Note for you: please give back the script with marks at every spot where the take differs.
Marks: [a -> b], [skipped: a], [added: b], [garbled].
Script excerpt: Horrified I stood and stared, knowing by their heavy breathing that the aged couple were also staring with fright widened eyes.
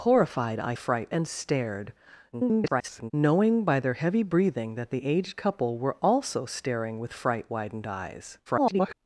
Horrified I [stood -> fright] and stared, [garbled] knowing by their heavy breathing that the aged couple were also staring with fright widened eyes. [garbled]